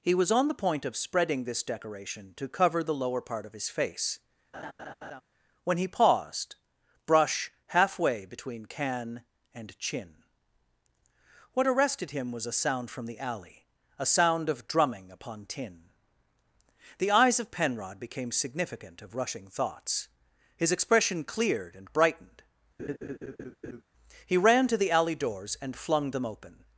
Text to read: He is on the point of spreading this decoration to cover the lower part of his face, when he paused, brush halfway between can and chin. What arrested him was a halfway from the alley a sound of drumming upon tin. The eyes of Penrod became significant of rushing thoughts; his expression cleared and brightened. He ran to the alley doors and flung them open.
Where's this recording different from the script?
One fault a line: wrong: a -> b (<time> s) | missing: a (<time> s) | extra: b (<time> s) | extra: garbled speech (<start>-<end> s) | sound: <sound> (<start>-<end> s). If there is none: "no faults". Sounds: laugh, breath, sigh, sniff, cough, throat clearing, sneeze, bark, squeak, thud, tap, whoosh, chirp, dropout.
wrong: is -> was (0.1 s)
sound: laugh (4.5-5.2 s)
wrong: halfway -> sound (12.5 s)
sound: laugh (22.8-23.8 s)